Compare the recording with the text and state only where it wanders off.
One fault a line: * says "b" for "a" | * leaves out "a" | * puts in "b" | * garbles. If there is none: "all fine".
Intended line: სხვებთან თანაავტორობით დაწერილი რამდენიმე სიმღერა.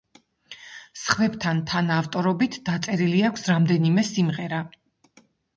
* puts in "აქვს"